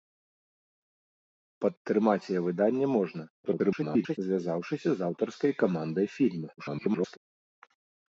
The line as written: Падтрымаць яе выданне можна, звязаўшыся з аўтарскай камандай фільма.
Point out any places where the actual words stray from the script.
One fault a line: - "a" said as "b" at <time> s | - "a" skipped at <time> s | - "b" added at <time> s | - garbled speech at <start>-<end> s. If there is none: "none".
- garbled speech at 3.4-4.2 s
- garbled speech at 6.6-7.2 s